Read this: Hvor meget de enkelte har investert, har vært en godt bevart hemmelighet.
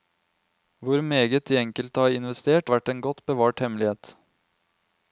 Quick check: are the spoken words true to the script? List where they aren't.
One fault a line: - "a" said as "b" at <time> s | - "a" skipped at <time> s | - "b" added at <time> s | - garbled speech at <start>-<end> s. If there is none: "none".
- "har" skipped at 2.7 s